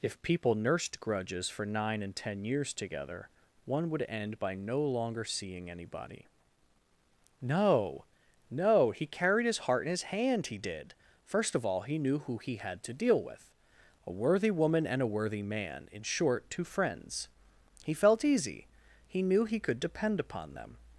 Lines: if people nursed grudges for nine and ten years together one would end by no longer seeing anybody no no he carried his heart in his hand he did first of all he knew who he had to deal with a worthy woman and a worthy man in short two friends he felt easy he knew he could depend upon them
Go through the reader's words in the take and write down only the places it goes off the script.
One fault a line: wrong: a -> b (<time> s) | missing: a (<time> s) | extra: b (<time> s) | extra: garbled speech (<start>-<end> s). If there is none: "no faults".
no faults